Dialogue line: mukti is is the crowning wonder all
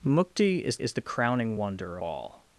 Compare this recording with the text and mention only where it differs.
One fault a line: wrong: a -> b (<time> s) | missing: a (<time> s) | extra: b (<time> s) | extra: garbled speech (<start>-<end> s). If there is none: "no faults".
no faults